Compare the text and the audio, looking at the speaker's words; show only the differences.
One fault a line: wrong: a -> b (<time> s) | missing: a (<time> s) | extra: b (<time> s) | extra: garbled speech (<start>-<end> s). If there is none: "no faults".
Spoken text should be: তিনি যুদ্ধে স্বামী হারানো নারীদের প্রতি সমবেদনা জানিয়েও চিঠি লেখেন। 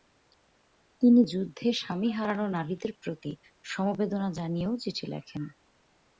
no faults